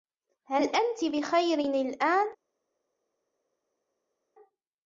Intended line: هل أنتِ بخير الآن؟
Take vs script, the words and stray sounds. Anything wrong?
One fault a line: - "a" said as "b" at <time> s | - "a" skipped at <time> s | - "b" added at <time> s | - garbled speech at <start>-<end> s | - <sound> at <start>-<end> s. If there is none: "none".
none